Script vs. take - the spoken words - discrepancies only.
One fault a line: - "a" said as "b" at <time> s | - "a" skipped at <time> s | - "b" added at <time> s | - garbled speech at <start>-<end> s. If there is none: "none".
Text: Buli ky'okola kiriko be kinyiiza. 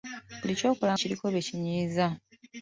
none